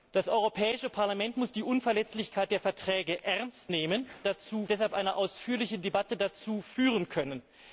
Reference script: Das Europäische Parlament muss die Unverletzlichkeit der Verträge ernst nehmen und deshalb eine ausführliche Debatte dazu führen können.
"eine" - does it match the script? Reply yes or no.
yes